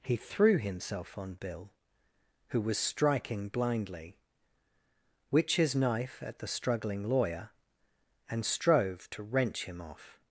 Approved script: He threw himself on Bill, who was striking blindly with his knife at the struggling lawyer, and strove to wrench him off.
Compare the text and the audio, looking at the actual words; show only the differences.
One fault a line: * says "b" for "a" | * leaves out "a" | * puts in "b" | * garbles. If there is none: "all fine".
* says "which" for "with"